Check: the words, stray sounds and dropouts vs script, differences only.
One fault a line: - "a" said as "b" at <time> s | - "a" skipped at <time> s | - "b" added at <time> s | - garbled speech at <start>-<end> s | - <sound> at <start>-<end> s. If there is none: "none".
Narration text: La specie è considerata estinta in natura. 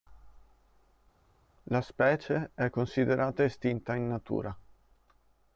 none